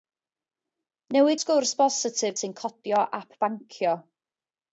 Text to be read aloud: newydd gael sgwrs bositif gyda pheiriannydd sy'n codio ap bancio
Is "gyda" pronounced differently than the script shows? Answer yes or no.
yes